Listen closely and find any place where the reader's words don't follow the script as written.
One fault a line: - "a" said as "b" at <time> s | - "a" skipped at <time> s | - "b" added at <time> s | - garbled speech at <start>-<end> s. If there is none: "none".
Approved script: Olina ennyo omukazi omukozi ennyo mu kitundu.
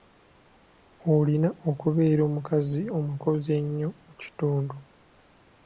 - "ennyo" said as "okubeera" at 1.7 s